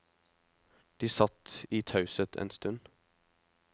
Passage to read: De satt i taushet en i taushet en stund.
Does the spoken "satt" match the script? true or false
true